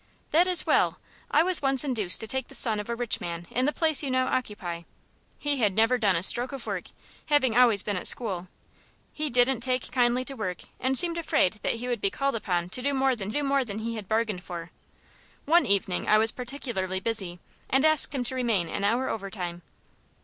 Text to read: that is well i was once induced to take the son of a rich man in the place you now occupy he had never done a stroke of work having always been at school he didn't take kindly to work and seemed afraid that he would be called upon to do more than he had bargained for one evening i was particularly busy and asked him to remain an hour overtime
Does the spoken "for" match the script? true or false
true